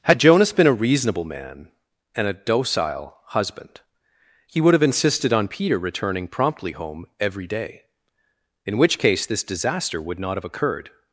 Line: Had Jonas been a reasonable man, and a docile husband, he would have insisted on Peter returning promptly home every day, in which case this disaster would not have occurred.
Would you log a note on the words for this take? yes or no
no